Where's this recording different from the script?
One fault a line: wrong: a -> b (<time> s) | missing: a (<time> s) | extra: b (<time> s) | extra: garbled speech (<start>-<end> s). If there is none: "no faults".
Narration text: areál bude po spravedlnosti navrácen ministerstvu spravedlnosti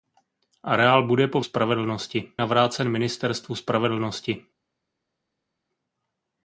no faults